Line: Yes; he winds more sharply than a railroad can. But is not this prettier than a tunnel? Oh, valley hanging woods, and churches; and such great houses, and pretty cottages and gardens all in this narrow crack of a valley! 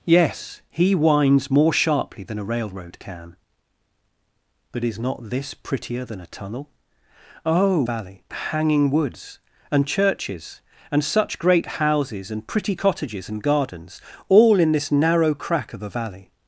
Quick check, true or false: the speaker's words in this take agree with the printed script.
true